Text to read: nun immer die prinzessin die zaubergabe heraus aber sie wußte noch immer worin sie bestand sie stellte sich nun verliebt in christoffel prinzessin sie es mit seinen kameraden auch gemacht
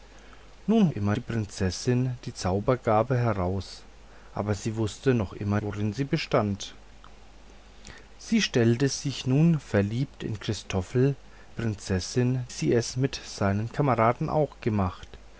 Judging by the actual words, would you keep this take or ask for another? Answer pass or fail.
pass